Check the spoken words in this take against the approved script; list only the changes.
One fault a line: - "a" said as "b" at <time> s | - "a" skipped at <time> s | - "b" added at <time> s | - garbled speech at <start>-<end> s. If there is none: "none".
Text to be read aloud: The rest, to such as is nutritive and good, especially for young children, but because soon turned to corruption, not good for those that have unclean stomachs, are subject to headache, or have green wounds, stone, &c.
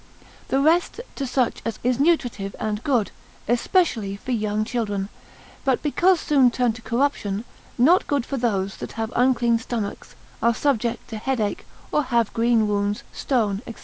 none